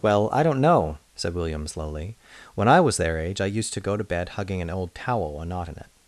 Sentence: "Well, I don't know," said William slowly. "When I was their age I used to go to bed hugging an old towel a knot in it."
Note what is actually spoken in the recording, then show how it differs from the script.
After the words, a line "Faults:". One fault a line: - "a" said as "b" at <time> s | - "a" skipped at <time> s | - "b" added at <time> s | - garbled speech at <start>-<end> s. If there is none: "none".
"Well, I don't know," said William slowly. "When I was their age I used to go to bed hugging an old towel a knot in it."
Faults:
none